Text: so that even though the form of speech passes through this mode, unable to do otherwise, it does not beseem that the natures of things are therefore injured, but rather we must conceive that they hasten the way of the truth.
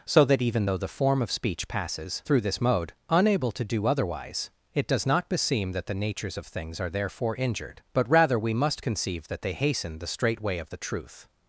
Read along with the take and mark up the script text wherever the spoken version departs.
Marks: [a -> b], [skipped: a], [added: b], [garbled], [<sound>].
so that even though the form of speech passes through this mode, unable to do otherwise, it does not beseem that the natures of things are therefore injured, but rather we must conceive that they hasten the [added: straight] way of the truth.